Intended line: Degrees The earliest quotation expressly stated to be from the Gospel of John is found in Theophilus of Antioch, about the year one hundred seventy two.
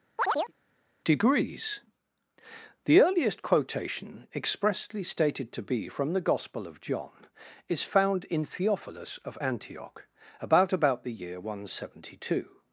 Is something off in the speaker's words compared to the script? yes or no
yes